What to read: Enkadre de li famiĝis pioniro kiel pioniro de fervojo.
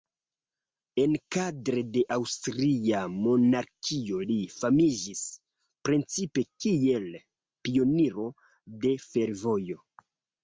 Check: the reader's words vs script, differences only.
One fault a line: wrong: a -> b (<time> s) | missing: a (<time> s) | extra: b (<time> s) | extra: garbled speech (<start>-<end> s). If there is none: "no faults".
extra: aŭstria monarkio (2.2 s)
wrong: pioniro -> precipe (5.9 s)